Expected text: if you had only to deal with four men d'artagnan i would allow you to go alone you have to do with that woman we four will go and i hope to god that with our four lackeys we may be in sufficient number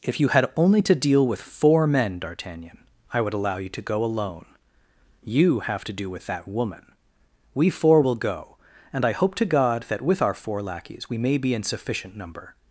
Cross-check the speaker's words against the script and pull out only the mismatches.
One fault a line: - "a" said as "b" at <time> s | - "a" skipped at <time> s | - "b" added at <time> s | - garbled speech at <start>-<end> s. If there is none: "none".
none